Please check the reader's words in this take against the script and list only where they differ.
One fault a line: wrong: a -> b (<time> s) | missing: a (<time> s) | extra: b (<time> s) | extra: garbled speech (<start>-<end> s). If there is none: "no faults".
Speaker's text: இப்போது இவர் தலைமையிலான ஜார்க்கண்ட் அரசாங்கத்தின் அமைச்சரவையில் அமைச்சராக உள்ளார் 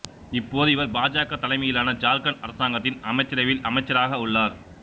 extra: பாஜக (0.9 s)